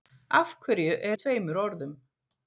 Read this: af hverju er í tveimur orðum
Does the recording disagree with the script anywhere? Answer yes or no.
no